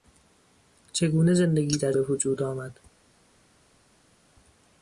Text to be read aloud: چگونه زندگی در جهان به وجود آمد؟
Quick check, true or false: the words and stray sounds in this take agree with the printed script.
false